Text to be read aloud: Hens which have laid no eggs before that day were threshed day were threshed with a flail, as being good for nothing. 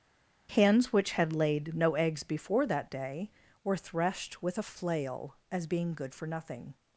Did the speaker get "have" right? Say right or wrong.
wrong